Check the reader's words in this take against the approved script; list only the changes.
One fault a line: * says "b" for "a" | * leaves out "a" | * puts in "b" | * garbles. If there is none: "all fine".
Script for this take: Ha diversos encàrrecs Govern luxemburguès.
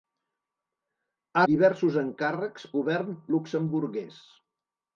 all fine